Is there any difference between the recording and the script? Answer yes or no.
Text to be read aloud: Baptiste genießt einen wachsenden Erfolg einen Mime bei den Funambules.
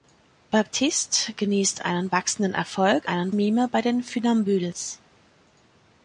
no